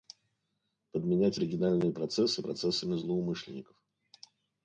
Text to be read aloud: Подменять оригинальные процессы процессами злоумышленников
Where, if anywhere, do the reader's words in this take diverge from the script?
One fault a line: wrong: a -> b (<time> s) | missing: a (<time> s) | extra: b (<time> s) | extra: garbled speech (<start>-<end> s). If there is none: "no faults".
no faults